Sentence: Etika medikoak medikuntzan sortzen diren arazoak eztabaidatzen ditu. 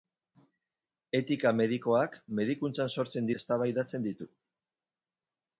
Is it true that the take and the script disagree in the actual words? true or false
true